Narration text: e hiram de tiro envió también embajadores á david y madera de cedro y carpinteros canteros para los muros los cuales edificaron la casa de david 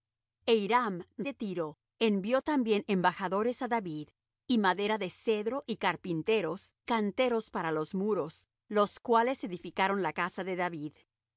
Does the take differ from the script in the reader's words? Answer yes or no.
no